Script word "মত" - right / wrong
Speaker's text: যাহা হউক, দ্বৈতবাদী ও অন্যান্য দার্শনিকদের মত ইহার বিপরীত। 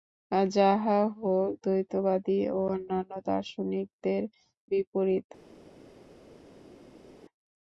wrong